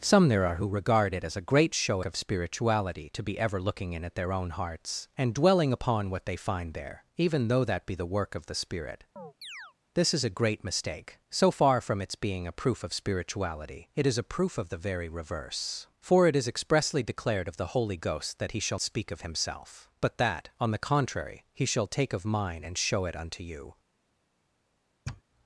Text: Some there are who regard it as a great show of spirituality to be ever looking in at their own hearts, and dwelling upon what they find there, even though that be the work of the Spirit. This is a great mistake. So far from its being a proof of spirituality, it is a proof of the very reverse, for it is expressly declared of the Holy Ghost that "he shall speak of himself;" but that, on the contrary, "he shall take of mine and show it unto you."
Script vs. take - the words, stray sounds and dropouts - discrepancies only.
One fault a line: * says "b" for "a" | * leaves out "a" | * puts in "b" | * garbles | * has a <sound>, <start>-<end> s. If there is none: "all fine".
* has a chirp, 9.2-9.7 s
* has a sniff, 25.0-25.2 s